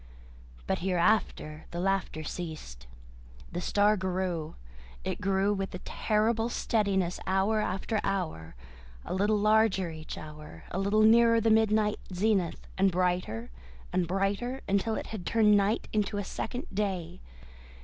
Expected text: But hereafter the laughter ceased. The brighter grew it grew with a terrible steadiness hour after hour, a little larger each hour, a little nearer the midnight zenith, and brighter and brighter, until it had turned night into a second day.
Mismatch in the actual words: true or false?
true